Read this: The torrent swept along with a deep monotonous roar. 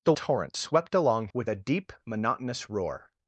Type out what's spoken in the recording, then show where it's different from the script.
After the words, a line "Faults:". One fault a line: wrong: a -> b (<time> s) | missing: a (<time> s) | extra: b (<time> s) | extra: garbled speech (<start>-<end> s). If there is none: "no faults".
The torrent swept along with a deep monotonous roar.
Faults:
no faults